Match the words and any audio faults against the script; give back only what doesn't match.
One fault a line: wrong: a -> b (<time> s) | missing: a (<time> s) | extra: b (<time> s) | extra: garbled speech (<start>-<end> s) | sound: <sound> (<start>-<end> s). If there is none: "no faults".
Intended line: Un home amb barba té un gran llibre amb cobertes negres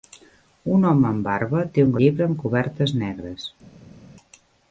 missing: gran (1.9 s)